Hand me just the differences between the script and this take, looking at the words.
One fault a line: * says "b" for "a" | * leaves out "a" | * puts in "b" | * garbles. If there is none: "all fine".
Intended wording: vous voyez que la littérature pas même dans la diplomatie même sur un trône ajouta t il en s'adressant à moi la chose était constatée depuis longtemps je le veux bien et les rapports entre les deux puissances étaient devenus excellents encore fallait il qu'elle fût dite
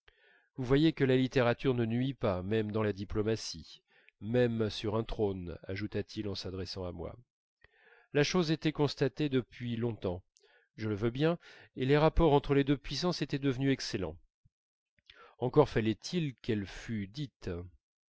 * puts in "ne nuit"